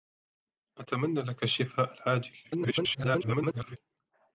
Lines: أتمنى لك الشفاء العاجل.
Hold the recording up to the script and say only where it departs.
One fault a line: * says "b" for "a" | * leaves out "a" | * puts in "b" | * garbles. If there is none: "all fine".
* garbles